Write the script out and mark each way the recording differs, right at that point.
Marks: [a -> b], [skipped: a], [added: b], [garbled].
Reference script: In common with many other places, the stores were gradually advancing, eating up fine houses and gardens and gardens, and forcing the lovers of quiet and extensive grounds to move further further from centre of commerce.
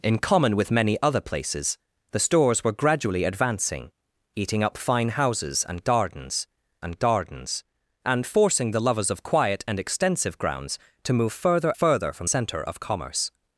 In common with many other places, the stores were gradually advancing, eating up fine houses and gardens and gardens, and forcing the lovers of quiet and extensive grounds to move further further from centre of commerce.